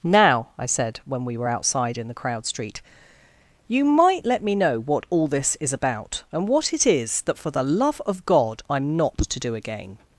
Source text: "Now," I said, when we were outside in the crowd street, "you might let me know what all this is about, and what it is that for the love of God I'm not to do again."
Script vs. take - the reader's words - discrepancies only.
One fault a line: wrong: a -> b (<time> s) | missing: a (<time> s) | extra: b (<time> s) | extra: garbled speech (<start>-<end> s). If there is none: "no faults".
no faults